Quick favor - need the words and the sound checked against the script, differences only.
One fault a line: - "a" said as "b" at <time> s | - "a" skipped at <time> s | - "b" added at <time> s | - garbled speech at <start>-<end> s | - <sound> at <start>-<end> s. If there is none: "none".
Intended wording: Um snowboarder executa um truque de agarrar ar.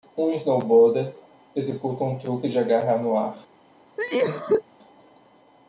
- "no" added at 3.0 s
- cough at 4.0-4.6 s